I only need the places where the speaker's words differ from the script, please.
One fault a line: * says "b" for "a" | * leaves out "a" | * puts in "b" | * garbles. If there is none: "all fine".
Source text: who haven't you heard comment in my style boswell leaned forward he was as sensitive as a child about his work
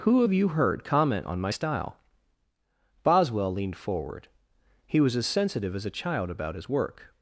* says "have" for "haven't"
* says "on" for "in"